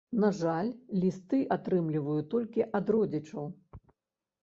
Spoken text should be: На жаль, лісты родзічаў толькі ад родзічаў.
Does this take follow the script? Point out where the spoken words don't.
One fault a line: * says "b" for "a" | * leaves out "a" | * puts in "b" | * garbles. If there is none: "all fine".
* says "атрымліваю" for "родзічаў"